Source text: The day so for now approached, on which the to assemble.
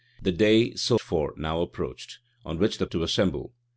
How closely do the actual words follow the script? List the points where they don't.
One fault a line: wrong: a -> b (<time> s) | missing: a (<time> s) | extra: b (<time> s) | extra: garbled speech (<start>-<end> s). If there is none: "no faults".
no faults